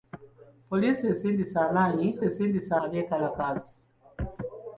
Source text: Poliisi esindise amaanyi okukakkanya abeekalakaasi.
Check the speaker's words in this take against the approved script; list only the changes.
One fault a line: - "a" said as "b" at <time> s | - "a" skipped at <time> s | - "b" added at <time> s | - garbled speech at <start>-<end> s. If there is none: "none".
- "okukakkanya" said as "esindise" at 2.3 s